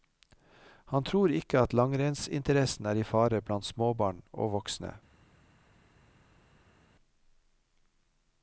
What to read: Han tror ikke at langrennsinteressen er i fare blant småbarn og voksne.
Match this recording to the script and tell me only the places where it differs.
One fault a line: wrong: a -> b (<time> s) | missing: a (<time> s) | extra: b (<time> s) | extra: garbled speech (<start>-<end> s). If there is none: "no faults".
no faults